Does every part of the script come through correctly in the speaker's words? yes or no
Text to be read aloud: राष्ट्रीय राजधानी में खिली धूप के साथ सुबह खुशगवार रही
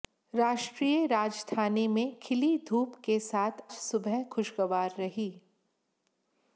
yes